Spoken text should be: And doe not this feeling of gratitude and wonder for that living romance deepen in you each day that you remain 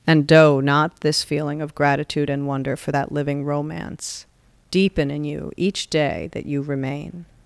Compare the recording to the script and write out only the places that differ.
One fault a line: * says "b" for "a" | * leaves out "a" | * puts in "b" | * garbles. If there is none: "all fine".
all fine